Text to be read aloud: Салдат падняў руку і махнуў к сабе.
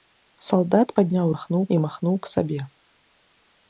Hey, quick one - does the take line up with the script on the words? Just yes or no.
no